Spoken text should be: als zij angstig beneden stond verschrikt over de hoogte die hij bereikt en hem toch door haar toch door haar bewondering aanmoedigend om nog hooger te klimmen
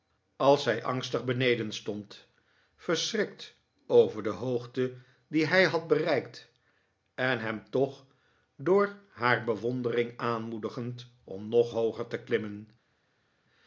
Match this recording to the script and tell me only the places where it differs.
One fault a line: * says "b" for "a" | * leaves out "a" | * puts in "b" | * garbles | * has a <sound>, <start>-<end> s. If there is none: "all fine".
* puts in "had"
* leaves out "toch door haar"